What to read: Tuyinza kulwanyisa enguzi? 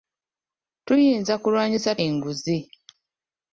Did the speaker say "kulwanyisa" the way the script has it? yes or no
yes